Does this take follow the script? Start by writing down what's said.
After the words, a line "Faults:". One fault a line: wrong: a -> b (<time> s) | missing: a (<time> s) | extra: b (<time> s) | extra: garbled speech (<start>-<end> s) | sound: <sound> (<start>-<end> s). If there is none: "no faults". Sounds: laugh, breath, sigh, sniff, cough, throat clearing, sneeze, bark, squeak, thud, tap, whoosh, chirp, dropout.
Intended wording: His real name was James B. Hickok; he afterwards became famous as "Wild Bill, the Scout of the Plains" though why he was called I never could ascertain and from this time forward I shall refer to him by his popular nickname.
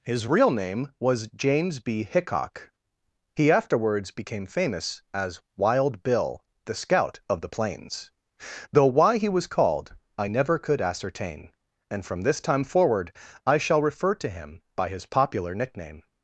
His real name was James B. Hickok; he afterwards became famous as "Wild Bill, the Scout of the Plains" though why he was called I never could ascertain and from this time forward I shall refer to him by his popular nickname.
Faults:
no faults